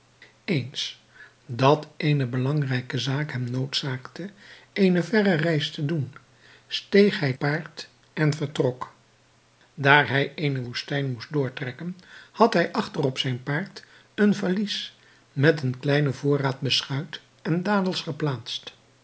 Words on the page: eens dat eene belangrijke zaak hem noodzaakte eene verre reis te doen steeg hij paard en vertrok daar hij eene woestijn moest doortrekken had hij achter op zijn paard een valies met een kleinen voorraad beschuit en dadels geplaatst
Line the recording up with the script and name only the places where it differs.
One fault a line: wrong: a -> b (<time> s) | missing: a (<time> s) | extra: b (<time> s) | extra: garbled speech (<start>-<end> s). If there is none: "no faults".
no faults